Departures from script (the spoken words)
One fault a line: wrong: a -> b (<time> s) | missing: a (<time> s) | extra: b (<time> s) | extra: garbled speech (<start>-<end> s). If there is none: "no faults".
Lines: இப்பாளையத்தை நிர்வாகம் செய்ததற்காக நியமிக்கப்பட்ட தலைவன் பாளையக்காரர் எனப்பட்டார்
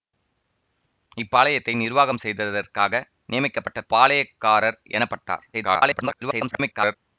missing: தலைவன் (3.8 s)
extra: garbled speech (5.5-7.0 s)